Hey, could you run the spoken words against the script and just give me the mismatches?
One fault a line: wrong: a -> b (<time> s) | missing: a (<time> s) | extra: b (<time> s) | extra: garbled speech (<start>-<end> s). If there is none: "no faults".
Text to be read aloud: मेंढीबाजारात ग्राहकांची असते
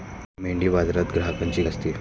no faults